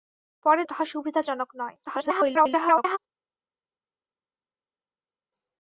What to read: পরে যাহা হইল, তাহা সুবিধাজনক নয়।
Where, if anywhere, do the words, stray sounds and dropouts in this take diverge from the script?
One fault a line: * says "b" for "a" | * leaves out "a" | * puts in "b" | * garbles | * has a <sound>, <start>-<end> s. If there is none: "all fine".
* leaves out "যাহা হইল"
* garbles